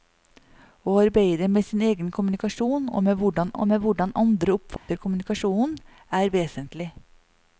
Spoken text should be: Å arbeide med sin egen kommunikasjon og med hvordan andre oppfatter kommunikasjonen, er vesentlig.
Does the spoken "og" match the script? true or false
true